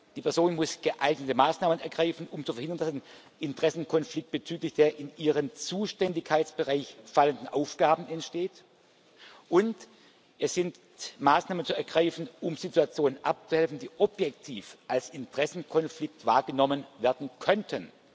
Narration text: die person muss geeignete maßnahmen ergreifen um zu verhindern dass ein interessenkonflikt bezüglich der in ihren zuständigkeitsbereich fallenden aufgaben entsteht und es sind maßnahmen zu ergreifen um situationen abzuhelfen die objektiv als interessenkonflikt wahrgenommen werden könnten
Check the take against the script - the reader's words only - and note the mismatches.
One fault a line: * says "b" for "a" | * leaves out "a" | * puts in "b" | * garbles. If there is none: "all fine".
all fine